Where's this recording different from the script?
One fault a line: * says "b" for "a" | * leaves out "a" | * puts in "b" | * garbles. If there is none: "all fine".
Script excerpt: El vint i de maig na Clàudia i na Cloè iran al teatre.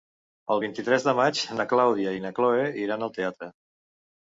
* puts in "tres"